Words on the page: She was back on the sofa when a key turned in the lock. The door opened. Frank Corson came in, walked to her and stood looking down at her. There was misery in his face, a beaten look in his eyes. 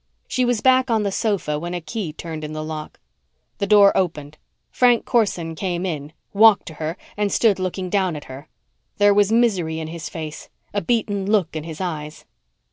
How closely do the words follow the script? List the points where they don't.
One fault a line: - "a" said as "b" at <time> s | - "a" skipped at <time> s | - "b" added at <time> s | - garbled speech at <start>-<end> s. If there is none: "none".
none